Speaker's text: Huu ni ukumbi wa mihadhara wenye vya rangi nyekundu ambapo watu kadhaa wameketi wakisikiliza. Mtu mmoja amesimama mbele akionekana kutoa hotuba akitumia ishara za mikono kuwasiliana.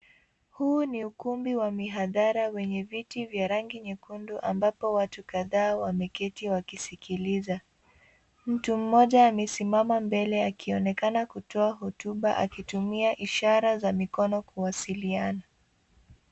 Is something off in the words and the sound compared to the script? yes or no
yes